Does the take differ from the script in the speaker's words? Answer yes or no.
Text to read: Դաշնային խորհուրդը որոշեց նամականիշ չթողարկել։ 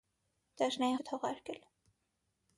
yes